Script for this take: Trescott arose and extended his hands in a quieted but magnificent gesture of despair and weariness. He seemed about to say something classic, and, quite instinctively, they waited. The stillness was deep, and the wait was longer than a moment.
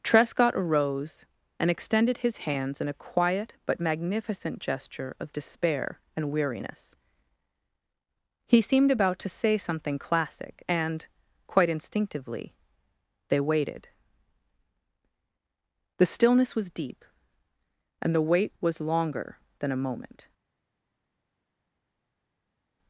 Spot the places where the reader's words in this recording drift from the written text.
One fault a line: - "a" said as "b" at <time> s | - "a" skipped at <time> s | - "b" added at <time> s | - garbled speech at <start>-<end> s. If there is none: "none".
- "quieted" said as "quiet" at 2.9 s